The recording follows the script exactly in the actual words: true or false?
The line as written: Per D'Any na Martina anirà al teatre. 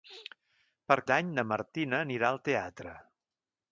true